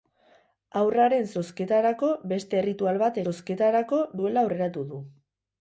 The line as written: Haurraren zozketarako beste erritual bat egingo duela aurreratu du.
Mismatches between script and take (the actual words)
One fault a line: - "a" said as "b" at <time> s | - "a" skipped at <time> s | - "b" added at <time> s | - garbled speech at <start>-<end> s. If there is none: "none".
- "egingo" said as "zozketarako" at 3.2 s